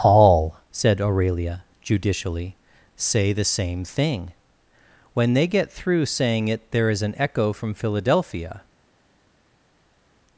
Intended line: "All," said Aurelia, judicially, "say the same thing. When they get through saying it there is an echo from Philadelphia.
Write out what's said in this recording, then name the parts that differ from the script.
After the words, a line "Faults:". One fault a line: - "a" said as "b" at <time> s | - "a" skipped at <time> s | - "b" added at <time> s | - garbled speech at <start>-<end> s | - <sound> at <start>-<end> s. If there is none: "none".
"All," said Aurelia, judicially, "say the same thing. When they get through saying it there is an echo from Philadelphia.
Faults:
none